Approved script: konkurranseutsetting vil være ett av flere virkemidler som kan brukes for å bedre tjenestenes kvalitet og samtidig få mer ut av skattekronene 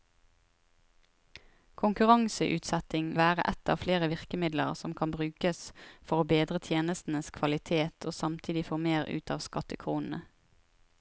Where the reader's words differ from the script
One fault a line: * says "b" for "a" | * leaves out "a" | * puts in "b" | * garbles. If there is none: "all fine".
* leaves out "vil"